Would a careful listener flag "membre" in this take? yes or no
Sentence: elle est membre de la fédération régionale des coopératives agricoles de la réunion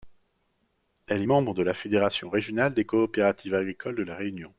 no